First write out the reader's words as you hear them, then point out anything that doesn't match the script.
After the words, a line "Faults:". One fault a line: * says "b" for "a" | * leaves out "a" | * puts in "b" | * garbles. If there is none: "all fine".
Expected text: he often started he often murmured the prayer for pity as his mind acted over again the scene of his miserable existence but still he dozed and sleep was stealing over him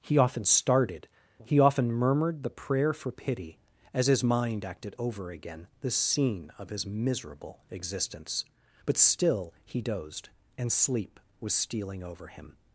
he often started he often murmured the prayer for pity as his mind acted over again the scene of his miserable existence but still he dozed and sleep was stealing over him
Faults:
all fine